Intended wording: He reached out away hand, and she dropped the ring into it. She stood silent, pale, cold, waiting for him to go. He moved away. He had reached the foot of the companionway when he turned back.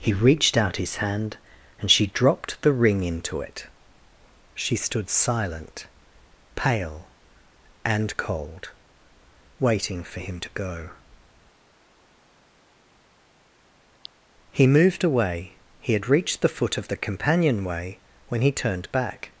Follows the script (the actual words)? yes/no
no